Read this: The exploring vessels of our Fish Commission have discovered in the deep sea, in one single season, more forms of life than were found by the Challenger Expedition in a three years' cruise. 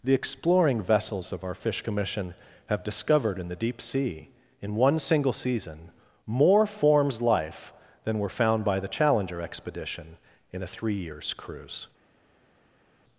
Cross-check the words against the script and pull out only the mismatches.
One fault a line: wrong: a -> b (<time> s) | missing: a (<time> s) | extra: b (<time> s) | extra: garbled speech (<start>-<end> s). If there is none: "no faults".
missing: of (7.2 s)